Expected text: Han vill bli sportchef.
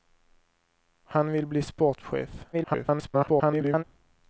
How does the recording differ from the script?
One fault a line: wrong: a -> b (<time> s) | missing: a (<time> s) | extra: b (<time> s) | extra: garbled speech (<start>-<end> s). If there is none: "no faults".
extra: garbled speech (2.5-3.8 s)